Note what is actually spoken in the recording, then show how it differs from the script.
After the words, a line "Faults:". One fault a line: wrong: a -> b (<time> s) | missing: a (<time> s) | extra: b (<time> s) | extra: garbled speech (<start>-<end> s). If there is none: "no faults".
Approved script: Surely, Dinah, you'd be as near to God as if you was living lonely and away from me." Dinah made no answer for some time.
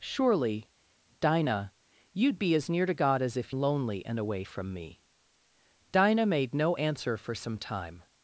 Surely, Dinah, you'd be as near to God as if lonely and away from me." Dinah made no answer for some time.
Faults:
missing: you was living (3.5 s)